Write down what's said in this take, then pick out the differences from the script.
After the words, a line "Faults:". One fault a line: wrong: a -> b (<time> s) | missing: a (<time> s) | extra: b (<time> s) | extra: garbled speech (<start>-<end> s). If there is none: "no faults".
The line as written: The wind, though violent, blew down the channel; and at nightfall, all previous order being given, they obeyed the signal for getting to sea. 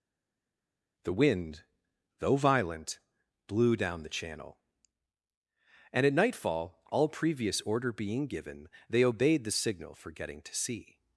The wind, though violent, blew down the channel; and at nightfall, all previous order being given, they obeyed the signal for getting to sea.
Faults:
no faults